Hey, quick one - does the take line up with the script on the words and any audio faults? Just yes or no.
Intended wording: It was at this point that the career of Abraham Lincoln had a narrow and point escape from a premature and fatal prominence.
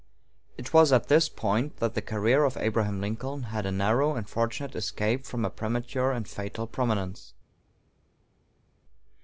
no